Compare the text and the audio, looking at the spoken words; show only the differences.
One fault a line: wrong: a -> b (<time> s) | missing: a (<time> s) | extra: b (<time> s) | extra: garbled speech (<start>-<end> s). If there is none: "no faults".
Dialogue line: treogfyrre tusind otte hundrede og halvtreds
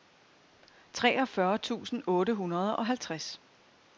no faults